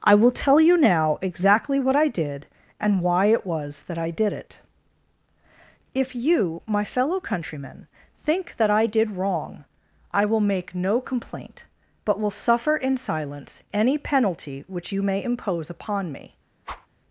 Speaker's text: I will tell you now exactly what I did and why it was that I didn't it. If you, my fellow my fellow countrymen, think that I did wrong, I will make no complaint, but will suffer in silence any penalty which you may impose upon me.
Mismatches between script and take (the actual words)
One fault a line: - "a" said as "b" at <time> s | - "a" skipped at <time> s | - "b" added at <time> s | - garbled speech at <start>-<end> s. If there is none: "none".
- "didn't" said as "did" at 4.1 s
- "my fellow" skipped at 7.2 s